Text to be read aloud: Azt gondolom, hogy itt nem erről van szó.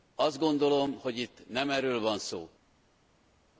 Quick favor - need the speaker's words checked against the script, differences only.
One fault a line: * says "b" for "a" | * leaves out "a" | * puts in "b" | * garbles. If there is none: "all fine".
all fine